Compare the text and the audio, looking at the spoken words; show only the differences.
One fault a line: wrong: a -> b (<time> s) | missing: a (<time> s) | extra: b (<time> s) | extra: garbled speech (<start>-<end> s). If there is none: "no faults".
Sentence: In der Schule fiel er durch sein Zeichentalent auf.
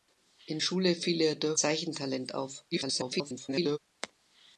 missing: der (0.6 s)
missing: sein (1.6 s)
extra: garbled speech (2.7-3.8 s)